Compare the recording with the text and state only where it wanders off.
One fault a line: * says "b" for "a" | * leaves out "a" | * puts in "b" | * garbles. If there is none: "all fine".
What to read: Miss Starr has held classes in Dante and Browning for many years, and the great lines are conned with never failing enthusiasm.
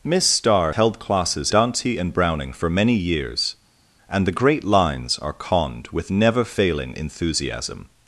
* leaves out "has"
* leaves out "in"